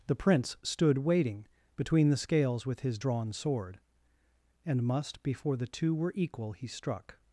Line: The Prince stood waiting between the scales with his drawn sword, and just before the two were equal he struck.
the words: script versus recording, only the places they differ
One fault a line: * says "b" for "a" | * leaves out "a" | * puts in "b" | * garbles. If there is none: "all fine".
* says "must" for "just"